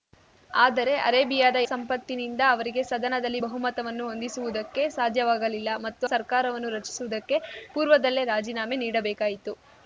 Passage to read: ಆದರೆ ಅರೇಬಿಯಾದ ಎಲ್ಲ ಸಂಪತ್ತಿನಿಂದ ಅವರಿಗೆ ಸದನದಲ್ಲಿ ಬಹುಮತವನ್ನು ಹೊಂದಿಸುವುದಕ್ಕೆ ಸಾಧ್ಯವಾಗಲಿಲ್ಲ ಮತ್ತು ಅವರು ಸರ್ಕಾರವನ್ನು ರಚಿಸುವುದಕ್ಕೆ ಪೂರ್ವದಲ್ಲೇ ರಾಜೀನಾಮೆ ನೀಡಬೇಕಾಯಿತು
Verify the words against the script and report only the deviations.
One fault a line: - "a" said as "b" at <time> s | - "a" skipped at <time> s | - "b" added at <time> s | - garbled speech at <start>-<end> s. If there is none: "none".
- "ಎಲ್ಲ" skipped at 1.6 s
- "ಅವರು" skipped at 6.1 s